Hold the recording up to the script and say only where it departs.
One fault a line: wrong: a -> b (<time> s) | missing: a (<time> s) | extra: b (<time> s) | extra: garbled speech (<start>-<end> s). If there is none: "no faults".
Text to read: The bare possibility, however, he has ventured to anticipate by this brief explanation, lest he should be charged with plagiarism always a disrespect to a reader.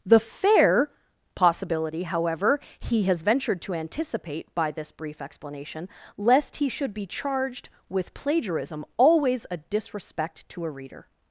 wrong: bare -> fair (0.2 s)